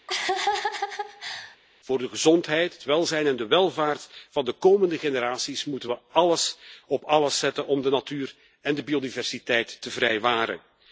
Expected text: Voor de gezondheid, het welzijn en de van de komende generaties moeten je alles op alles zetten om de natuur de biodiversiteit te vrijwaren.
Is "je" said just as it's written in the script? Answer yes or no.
no